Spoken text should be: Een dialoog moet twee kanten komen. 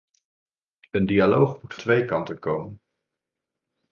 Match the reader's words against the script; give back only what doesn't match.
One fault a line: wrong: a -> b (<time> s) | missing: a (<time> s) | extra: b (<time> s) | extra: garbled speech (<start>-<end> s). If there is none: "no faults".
no faults